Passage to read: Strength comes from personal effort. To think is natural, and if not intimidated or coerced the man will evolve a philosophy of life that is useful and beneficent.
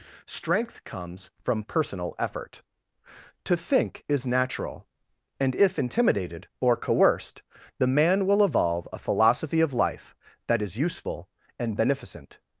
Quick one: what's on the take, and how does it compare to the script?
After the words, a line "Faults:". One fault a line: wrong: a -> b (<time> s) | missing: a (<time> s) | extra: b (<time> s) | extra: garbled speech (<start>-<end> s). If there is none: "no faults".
Strength comes from personal effort. To think is natural, and if intimidated or coerced the man will evolve a philosophy of life that is useful and beneficent.
Faults:
missing: not (5.8 s)